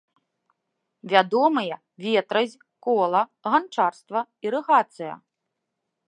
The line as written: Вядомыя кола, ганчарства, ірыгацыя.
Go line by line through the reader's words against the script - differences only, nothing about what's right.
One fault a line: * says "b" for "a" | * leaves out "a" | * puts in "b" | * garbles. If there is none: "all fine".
* puts in "ветразь"